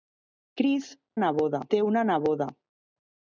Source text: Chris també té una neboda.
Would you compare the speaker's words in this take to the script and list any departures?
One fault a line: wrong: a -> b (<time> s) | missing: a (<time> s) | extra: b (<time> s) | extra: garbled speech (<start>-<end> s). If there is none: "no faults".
wrong: també -> neboda (1.2 s)